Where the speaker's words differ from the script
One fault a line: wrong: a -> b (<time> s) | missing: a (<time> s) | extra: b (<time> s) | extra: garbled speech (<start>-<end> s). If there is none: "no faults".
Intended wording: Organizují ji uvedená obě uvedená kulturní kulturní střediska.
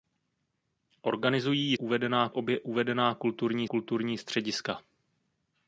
no faults